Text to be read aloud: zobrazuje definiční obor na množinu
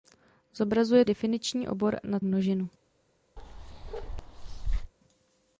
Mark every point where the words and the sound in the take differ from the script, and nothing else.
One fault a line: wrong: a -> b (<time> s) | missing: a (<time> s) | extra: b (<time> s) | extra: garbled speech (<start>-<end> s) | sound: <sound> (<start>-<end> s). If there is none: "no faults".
sound: bark (3.4-4.9 s)